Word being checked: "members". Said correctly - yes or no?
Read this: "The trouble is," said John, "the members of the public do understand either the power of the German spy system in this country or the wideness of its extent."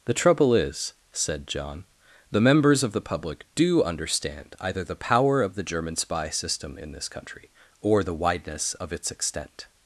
yes